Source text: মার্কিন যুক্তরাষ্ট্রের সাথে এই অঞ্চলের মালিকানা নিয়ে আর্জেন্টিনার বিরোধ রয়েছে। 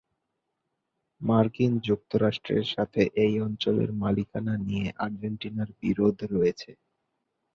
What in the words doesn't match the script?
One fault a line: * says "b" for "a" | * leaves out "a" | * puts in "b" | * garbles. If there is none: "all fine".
all fine